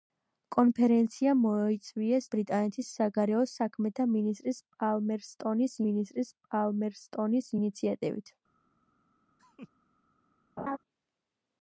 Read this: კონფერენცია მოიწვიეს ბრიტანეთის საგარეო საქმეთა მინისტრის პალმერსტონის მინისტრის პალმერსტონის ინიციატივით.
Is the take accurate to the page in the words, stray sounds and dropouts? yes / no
no